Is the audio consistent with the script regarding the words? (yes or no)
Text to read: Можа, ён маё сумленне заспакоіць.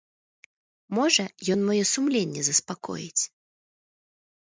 yes